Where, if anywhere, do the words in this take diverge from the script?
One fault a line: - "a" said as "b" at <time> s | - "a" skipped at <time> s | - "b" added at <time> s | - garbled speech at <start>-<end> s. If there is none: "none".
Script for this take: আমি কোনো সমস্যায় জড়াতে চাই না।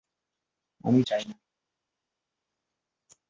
- "কোনো সমস্যায় জড়াতে" skipped at 1.0 s